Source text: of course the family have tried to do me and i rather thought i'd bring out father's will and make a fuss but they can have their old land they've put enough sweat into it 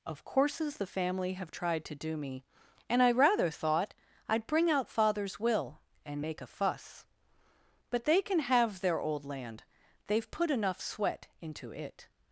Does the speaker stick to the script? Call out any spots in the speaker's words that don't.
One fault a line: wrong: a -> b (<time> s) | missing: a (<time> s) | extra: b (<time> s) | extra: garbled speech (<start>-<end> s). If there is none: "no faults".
wrong: course -> courses (0.2 s)